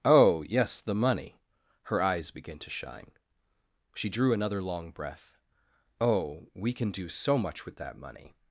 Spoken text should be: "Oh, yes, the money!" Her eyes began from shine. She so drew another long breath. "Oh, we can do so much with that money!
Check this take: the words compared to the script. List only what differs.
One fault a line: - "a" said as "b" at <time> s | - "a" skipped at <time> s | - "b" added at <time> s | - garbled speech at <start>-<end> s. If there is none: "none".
- "from" said as "to" at 2.6 s
- "so" skipped at 4.1 s